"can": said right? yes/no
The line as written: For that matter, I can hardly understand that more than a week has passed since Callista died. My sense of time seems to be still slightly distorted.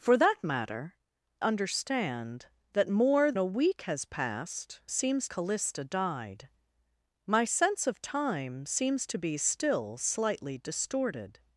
no